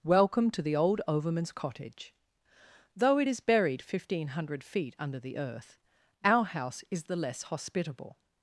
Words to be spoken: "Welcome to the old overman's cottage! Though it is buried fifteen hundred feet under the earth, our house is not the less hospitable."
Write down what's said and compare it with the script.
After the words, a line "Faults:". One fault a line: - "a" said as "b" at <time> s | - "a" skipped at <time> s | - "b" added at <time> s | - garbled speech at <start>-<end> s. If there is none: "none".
"Welcome to the old overman's cottage! Though it is buried fifteen hundred feet under the earth, our house is the less hospitable."
Faults:
- "not" skipped at 7.0 s